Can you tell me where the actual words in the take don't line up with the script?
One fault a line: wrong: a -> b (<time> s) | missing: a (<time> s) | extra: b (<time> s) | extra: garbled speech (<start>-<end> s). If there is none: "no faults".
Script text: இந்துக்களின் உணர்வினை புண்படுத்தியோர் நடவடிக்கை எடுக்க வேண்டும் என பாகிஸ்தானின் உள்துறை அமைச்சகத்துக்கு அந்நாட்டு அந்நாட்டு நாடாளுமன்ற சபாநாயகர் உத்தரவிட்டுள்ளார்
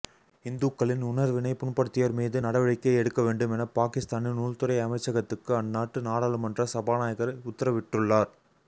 extra: மீது (2.1 s)
missing: அந்நாட்டு (6.1 s)